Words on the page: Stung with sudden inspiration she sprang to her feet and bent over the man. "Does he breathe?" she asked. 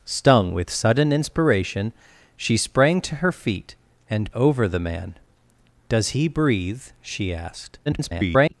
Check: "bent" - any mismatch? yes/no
yes